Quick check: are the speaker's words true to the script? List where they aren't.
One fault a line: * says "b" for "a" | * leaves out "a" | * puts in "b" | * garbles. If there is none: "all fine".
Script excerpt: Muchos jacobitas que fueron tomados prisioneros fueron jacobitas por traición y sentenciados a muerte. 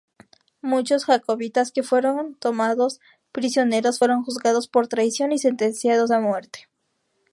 * says "juzgados" for "jacobitas"